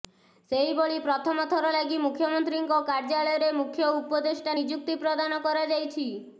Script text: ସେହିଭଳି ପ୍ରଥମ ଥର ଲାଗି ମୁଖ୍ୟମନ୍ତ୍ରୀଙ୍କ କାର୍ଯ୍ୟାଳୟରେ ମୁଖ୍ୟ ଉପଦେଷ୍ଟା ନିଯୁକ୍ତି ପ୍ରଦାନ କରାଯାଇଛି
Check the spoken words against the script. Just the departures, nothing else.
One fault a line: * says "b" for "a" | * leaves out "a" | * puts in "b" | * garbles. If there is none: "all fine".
all fine